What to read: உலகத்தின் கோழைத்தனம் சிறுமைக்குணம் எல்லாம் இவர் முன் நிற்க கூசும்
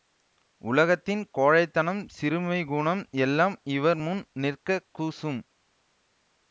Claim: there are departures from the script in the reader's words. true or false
false